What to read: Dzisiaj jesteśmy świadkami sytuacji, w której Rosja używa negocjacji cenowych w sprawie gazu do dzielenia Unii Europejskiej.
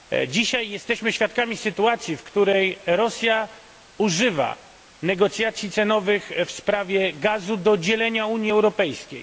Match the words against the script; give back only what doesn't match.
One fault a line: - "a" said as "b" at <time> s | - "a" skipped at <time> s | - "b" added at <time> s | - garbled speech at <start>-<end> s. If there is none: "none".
none